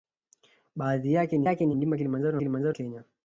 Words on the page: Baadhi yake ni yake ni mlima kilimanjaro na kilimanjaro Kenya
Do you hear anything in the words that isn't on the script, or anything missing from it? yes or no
no